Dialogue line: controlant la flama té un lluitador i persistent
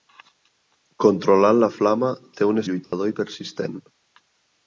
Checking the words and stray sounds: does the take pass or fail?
fail